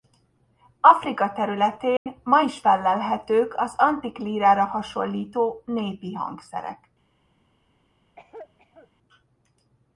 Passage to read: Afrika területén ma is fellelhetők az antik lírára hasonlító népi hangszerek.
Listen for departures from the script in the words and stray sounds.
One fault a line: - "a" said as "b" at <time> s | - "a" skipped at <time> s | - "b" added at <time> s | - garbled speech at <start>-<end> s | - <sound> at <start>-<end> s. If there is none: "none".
- dropout at 2.0-2.1 s
- cough at 8.2-8.9 s